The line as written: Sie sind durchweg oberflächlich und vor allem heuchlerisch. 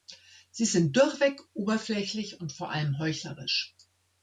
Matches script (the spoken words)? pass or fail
pass